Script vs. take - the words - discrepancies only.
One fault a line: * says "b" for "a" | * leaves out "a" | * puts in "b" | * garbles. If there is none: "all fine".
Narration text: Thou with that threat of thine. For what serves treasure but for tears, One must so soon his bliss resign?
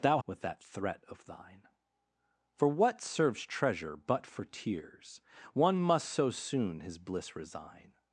all fine